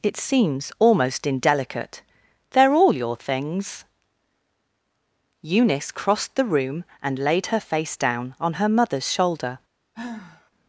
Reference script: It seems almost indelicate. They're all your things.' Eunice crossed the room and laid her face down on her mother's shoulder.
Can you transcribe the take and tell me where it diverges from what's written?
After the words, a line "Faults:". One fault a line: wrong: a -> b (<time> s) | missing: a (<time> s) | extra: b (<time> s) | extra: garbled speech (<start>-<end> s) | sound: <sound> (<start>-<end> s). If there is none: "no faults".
It seems almost indelicate. They're all your things.' Eunice crossed the room and laid her face down on her mother's shoulder.
Faults:
sound: sigh (9.9-10.5 s)